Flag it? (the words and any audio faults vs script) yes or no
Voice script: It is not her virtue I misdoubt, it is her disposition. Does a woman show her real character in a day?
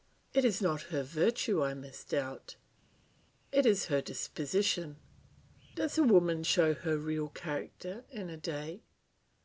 no